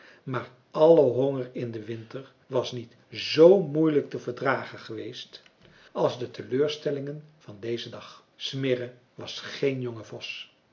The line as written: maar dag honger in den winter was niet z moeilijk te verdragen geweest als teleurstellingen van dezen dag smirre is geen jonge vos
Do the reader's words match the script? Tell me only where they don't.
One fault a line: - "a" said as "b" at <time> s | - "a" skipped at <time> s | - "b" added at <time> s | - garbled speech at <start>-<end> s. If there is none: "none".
- "dag" said as "alle" at 0.7 s
- "de" added at 6.2 s
- "is" said as "was" at 9.1 s